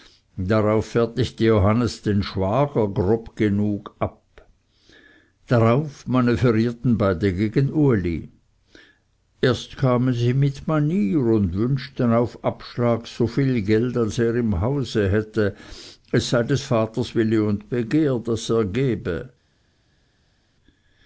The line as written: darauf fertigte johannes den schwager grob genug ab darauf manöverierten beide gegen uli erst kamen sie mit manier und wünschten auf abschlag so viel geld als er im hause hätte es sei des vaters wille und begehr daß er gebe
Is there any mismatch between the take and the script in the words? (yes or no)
no